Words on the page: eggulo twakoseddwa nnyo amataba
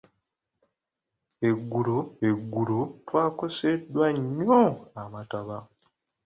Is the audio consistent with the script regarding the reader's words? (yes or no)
no